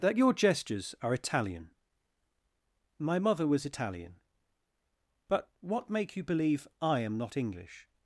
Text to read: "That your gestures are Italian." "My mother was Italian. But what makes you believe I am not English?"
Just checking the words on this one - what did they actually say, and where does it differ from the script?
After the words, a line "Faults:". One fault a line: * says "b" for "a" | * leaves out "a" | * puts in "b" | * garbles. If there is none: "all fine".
"That your gestures are Italian." "My mother was Italian. But what make you believe I am not English?"
Faults:
* says "make" for "makes"